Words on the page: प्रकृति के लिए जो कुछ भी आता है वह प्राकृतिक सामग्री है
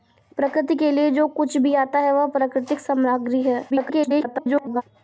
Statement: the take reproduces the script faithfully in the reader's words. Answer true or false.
false